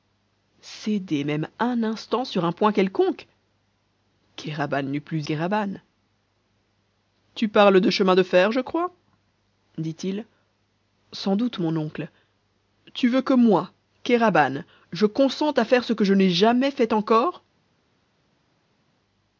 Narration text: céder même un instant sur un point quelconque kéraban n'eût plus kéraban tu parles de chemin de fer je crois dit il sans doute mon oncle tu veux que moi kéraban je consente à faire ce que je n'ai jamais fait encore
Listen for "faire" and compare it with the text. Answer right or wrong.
right